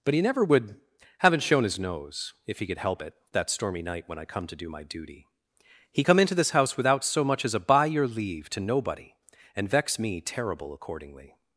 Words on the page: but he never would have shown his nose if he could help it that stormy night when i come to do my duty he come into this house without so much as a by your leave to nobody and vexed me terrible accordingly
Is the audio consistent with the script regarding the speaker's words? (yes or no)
no